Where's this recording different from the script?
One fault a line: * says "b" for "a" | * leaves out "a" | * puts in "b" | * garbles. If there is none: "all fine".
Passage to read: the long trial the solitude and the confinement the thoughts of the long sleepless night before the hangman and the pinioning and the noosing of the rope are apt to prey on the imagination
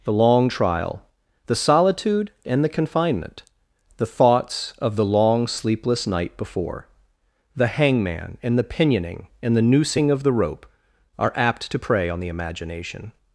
all fine